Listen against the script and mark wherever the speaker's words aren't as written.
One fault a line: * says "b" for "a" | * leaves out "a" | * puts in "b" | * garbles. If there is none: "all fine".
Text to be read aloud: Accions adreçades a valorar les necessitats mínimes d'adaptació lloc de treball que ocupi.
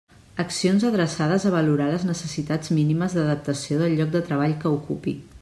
* puts in "del"